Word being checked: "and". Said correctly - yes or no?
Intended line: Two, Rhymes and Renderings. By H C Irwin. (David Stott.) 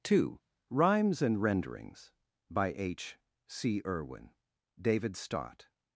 yes